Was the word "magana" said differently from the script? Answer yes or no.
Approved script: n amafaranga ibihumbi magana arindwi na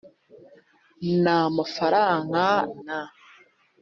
yes